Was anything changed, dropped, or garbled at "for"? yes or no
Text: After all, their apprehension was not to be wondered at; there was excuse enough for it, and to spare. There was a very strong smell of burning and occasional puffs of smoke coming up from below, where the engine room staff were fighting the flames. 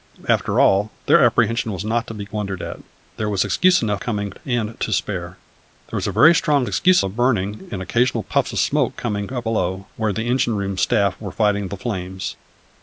yes